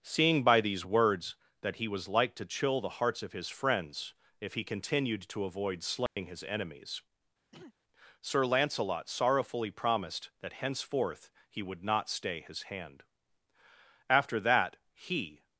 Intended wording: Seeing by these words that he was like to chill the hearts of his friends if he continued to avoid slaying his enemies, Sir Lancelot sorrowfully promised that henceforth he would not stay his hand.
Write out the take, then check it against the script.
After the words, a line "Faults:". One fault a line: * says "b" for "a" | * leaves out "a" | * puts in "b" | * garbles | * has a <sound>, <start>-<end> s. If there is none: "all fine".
Seeing by these words that he was like to chill the hearts of his friends if he continued to avoid slaying his enemies, Sir Lancelot sorrowfully promised that henceforth he would not stay his hand. After that he
Faults:
* has a dropout, 6.1-6.2 s
* has a throat clearing, 7.5-7.7 s
* puts in "After that he"